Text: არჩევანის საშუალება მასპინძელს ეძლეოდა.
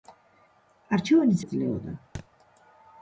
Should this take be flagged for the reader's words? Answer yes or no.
yes